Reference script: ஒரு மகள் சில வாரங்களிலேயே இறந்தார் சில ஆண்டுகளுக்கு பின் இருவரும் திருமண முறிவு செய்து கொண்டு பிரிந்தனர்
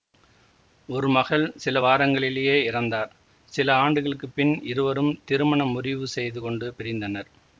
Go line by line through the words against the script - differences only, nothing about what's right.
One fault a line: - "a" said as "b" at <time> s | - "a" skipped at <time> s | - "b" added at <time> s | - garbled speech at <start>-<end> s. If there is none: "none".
none